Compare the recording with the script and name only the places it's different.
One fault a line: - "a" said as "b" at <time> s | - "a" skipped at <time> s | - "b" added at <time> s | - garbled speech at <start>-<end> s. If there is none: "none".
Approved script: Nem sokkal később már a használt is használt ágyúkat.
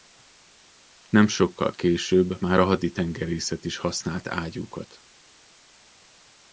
- "használt" said as "haditengerészet" at 2.6 s